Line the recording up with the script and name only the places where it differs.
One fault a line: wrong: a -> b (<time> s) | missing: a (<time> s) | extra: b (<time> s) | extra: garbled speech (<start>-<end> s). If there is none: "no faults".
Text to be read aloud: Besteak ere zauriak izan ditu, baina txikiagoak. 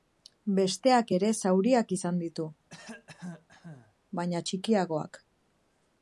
no faults